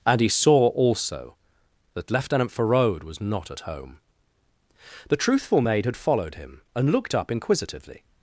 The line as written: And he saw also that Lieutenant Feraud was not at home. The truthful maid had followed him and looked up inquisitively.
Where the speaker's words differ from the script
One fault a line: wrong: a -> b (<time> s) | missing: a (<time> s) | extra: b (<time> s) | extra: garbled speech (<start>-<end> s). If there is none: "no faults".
no faults